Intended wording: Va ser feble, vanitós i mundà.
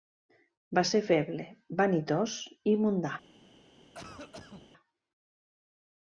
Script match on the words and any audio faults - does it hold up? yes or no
no